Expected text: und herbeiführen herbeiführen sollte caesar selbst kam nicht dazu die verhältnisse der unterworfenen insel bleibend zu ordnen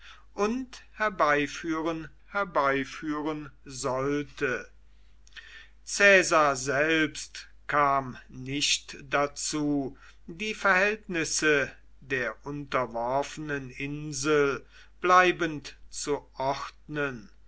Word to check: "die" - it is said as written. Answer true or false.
true